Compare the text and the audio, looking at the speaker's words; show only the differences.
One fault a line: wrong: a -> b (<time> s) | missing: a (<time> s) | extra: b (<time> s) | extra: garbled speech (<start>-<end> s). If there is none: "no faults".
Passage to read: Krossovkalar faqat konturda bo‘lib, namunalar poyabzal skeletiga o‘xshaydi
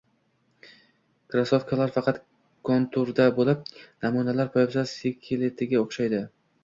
no faults